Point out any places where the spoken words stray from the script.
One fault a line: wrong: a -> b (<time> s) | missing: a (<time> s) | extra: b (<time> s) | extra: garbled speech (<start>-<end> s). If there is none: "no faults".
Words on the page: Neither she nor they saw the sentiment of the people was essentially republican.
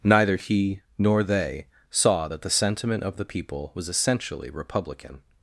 wrong: she -> he (0.3 s)
extra: that (2.3 s)